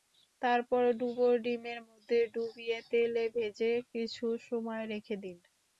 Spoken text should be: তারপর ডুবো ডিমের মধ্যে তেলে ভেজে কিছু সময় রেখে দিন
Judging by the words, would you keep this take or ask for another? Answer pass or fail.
fail